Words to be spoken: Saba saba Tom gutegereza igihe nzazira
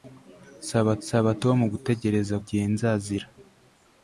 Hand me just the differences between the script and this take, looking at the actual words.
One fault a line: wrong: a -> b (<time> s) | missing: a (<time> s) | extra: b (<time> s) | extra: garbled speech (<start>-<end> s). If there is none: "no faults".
no faults